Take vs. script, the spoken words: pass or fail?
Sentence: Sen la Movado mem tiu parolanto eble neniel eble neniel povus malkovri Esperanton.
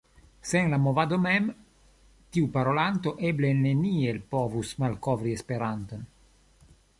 fail